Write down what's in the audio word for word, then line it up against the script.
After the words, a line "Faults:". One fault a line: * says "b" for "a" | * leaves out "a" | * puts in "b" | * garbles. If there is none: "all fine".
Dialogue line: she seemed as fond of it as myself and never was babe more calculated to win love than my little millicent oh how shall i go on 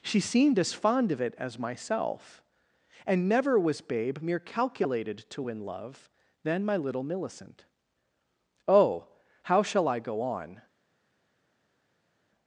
she seemed as fond of it as myself and never was babe mere calculated to win love than my little millicent oh how shall i go on
Faults:
* says "mere" for "more"